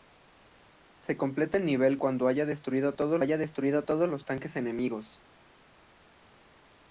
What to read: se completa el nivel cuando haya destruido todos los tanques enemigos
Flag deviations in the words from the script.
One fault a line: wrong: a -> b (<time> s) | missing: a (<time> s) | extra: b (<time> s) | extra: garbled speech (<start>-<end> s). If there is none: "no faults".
extra: haya destruido todos (3.2 s)